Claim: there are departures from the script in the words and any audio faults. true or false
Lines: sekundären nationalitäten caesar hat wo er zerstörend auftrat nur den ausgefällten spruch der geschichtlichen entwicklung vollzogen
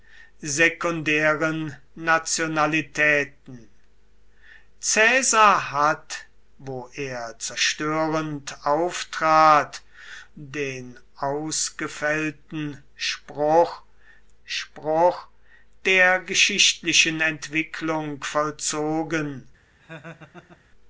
true